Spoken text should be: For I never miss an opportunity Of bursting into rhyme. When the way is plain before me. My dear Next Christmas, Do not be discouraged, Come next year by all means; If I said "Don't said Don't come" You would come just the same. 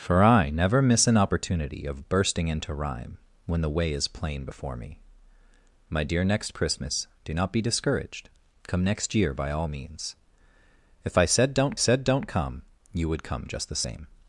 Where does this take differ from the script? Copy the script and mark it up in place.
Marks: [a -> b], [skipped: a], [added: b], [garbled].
For I never miss an opportunity Of bursting into rhyme. When the way is plain before me. My dear Next Christmas, Do not be discouraged, Come next year by all means; If I said "Don't said Don't come" You would come just the same.